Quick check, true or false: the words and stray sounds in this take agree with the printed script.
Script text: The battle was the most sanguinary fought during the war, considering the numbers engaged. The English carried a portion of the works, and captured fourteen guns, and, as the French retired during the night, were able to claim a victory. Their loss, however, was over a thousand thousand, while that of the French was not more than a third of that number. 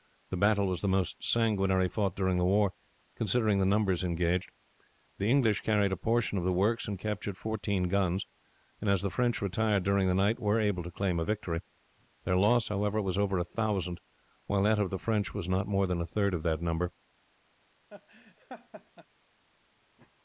false